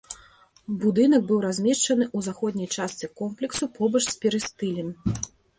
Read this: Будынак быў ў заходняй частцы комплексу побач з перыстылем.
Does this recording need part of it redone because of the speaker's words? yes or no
yes